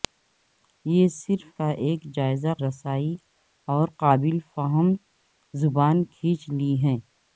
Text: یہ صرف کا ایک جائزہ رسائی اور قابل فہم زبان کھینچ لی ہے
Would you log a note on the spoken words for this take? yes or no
no